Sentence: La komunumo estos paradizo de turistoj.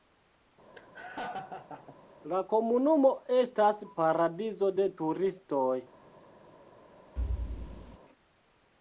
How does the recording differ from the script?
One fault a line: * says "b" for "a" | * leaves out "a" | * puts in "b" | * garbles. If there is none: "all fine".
* says "estas" for "estos"